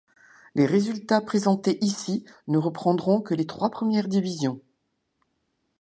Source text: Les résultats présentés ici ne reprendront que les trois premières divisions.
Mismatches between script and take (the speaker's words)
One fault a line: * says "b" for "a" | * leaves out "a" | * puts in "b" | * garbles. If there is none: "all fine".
all fine